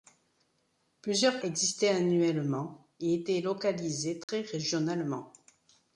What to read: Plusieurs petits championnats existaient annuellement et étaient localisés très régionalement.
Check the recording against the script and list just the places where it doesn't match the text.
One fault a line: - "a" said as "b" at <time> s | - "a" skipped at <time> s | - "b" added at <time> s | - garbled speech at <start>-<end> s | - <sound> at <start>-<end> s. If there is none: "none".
- "petits championnats" skipped at 1.4 s
- dropout at 4.2-4.3 s